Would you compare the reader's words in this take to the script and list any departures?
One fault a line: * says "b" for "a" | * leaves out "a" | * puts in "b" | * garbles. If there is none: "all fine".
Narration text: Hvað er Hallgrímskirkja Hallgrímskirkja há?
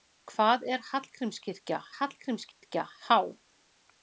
all fine